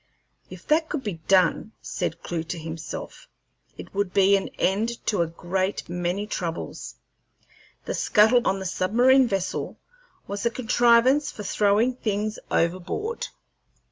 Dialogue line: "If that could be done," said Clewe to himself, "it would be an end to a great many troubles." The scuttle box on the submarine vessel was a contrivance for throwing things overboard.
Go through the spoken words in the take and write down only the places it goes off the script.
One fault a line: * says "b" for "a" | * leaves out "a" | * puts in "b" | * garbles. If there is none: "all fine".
* leaves out "box"